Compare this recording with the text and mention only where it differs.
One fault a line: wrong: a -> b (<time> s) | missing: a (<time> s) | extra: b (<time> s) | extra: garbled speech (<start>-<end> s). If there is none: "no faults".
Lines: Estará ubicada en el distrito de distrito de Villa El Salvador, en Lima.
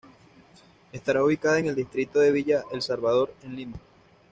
missing: distrito de (2.3 s)